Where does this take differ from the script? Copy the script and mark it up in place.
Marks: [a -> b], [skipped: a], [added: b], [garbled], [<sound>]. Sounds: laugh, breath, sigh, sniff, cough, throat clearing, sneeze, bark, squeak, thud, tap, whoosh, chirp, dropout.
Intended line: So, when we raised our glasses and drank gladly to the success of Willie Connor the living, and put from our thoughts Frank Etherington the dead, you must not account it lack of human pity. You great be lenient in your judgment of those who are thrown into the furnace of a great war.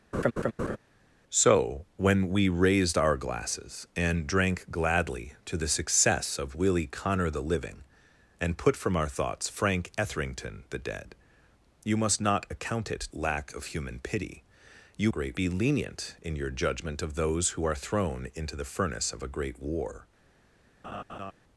[laugh] So, when we raised our glasses and drank gladly to the success of Willie Connor the living, and put from our thoughts Frank Etherington the dead, you must not account it lack of human pity. You great be lenient in your judgment of those who are thrown into the furnace of a great war. [laugh]